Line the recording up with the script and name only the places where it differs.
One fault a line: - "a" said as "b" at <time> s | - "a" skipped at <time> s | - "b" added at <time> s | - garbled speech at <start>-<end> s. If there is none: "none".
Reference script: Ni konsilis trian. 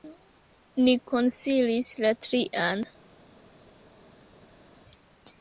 - "la" added at 2.1 s